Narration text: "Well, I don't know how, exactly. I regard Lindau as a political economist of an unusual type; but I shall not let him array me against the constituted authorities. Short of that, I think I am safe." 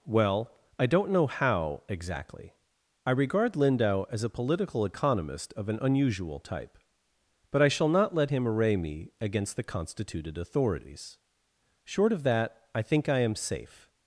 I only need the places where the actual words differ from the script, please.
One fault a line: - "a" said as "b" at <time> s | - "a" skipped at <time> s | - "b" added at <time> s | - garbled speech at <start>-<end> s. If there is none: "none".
none